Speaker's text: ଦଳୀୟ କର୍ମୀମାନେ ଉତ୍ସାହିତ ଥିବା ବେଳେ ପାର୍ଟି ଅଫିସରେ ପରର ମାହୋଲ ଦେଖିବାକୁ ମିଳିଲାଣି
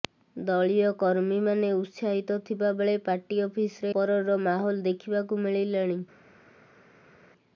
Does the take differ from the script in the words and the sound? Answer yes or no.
no